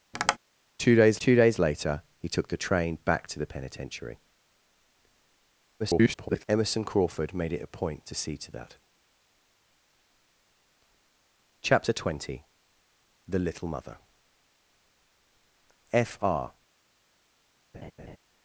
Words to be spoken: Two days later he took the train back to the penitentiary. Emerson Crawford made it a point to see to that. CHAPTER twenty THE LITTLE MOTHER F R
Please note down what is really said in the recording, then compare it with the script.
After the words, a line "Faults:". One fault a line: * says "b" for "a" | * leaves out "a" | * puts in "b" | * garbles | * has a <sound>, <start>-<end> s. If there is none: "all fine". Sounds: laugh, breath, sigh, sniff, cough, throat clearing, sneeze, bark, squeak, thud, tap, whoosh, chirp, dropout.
Two days two days later he took the train back to the penitentiary. [garbled] Emerson Crawford made it a point to see to that. CHAPTER twenty THE LITTLE MOTHER F R
Faults:
* has a tap, 0.1-0.4 s
* puts in "two days"
* garbles
* has a laugh, 17.7-18.2 s